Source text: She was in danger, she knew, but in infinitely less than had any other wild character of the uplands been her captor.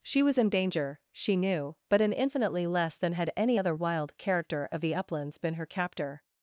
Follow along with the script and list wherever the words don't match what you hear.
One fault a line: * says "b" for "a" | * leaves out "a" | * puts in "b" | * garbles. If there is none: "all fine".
all fine